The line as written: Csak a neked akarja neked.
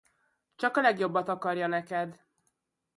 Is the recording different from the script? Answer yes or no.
yes